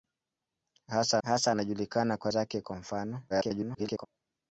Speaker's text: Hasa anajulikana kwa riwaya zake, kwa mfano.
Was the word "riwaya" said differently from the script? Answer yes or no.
yes